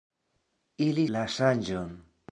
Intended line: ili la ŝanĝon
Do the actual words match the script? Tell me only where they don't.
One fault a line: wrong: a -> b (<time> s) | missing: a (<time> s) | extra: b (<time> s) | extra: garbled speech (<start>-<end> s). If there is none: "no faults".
no faults